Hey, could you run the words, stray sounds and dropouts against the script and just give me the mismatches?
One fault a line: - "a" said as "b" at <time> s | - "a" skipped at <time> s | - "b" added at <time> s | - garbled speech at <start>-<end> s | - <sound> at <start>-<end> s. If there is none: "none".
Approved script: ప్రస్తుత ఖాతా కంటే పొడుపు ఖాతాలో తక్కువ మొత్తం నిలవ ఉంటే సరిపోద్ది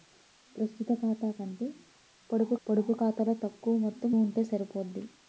- "పొడుపు" added at 2.7 s
- "నిలవ" skipped at 4.1 s